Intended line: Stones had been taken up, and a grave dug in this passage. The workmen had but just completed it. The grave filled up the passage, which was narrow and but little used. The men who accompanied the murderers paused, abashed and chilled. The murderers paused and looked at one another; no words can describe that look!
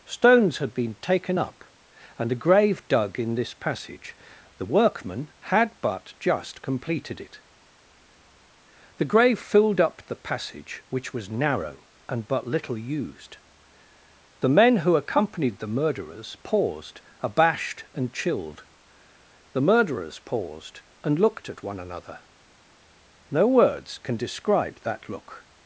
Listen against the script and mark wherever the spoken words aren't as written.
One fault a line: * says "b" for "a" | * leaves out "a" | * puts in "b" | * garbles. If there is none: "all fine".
all fine